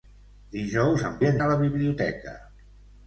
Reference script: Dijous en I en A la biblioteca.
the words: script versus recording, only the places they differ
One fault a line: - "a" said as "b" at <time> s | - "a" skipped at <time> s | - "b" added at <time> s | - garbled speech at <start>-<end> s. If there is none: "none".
none